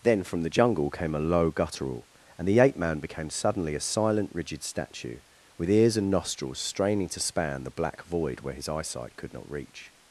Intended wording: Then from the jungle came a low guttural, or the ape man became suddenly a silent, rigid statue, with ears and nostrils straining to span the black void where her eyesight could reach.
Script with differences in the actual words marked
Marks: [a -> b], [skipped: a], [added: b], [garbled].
Then from the jungle came a low guttural, [or -> and] the ape man became suddenly a silent, rigid statue, with ears and nostrils straining to span the black void where [her -> his] eyesight could [added: not] reach.